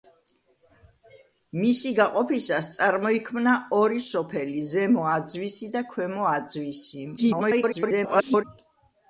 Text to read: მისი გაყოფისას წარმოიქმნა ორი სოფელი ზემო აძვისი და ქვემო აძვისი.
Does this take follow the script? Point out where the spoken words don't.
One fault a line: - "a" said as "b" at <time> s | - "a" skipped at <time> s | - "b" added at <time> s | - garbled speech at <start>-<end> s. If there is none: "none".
- garbled speech at 7.2-8.4 s